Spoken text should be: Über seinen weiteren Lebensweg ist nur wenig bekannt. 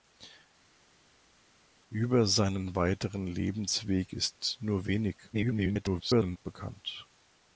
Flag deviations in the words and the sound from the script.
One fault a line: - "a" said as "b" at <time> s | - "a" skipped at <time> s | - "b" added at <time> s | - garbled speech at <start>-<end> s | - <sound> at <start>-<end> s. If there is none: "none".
- garbled speech at 5.3-6.4 s